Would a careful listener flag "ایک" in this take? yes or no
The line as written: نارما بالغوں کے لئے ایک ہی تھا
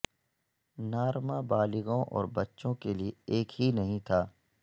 no